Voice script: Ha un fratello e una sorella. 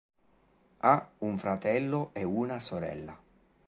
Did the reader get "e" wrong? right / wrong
right